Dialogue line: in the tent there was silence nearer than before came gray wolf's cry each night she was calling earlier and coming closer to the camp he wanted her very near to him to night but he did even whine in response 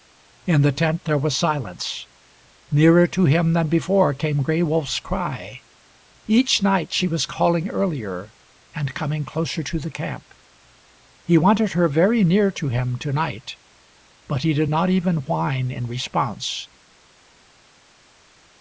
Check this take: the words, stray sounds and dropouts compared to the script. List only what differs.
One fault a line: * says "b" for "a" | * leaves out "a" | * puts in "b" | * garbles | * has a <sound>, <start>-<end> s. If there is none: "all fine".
* puts in "to him"
* puts in "not"